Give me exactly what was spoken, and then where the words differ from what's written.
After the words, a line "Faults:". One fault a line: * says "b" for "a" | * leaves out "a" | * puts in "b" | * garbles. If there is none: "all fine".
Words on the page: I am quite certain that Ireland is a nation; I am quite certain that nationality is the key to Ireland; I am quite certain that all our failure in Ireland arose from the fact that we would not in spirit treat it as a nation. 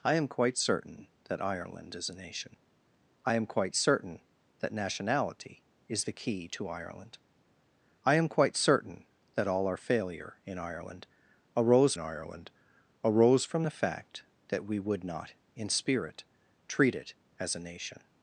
I am quite certain that Ireland is a nation; I am quite certain that nationality is the key to Ireland; I am quite certain that all our failure in Ireland arose Ireland arose from the fact that we would not in spirit treat it as a nation.
Faults:
* puts in "Ireland arose"